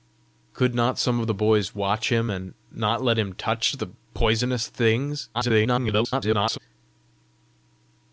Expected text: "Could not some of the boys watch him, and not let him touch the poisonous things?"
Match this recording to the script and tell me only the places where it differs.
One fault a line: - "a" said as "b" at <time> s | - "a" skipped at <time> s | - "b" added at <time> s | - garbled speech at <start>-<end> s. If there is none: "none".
- garbled speech at 5.3-6.6 s